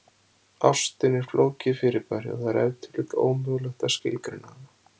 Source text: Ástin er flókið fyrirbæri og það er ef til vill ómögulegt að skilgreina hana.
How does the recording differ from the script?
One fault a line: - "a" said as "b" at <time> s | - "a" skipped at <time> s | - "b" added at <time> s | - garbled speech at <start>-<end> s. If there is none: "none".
none